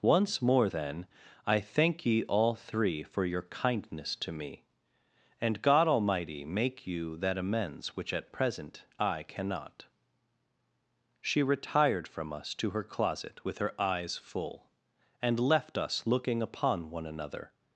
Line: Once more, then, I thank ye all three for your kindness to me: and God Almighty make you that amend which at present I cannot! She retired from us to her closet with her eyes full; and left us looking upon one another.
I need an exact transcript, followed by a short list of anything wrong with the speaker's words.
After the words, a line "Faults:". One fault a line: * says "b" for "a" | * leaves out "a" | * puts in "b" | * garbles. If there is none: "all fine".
Once more, then, I thank ye all three for your kindness to me: and God Almighty make you that amends which at present I cannot! She retired from us to her closet with her eyes full; and left us looking upon one another.
Faults:
* says "amends" for "amend"